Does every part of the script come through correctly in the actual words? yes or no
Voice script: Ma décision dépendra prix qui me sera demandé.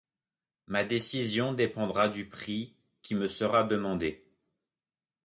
no